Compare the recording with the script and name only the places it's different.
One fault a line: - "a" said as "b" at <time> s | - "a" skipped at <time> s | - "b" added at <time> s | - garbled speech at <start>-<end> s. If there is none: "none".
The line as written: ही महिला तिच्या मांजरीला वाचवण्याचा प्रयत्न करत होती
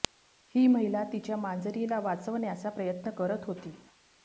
none